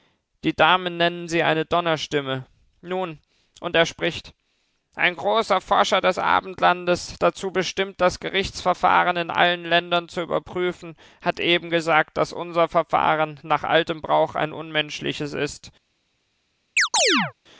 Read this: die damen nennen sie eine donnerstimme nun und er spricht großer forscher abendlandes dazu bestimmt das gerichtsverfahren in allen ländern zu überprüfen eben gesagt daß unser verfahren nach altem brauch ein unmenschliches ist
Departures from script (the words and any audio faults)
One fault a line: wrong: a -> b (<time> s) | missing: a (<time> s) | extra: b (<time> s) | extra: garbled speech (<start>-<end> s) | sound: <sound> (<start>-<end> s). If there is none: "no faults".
extra: ein (5.0 s)
extra: des (6.0 s)
extra: hat (11.2 s)
sound: chirp (16.8-17.3 s)